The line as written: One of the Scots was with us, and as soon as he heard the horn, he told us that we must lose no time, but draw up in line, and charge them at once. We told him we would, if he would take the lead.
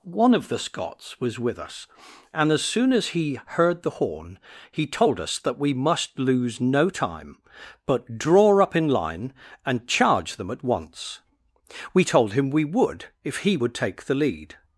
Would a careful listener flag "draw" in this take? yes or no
no